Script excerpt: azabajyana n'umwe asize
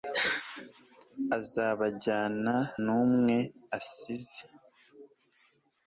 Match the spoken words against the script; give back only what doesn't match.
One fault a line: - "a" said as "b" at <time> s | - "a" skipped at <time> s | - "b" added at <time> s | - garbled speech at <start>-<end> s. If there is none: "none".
none